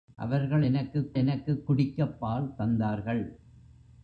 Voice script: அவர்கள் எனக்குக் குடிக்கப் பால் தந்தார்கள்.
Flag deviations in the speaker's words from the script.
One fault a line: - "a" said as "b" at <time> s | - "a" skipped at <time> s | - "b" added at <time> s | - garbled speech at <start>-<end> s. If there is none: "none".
- "எனக்குக்" added at 1.1 s